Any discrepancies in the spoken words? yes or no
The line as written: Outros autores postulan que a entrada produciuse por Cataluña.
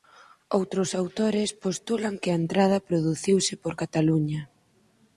no